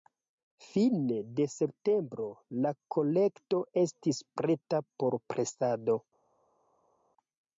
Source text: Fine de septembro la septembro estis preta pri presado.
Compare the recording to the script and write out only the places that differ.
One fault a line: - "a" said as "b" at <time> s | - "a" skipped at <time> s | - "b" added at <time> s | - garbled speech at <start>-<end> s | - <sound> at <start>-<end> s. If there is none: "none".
- "septembro" said as "kolekto" at 3.0 s
- "pri" said as "por" at 5.0 s